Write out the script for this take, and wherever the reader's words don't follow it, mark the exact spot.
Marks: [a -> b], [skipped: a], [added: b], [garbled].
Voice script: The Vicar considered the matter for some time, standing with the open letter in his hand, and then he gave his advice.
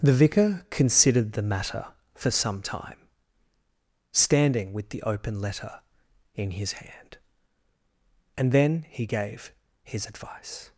The Vicar considered the matter for some time, standing with the open letter in his hand, and then he gave his advice.